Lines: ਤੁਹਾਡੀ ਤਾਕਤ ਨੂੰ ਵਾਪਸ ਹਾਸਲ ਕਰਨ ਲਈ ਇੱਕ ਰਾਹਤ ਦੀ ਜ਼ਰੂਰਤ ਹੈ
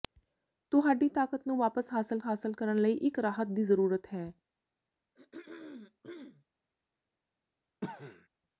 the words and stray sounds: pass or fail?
fail